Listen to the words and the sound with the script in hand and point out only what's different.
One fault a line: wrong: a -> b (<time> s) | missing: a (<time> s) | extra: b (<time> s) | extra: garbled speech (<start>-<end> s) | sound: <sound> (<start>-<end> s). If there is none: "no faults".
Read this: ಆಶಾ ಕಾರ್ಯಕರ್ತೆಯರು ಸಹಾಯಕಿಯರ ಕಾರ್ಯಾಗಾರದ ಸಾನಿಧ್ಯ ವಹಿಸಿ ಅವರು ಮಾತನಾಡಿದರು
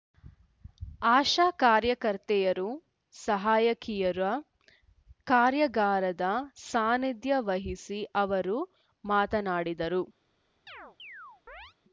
sound: chirp (10.7-11.7 s)